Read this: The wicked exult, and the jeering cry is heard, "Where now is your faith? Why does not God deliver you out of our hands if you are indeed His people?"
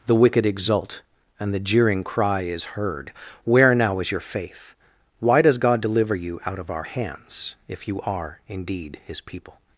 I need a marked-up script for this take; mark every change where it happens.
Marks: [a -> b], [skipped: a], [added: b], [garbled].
The wicked exult, and the jeering cry is heard, "Where now is your faith? Why does [skipped: not] God deliver you out of our hands if you are indeed His people?"